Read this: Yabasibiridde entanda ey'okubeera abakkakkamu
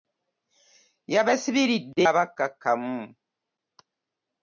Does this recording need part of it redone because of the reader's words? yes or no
yes